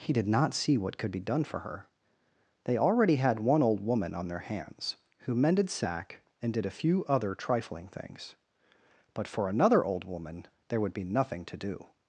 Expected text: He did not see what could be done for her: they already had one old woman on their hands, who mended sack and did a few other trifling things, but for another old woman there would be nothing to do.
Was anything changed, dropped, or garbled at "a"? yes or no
no